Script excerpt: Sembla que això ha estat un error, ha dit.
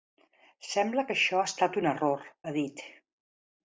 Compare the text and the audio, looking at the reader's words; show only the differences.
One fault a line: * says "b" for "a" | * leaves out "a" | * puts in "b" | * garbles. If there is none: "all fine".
all fine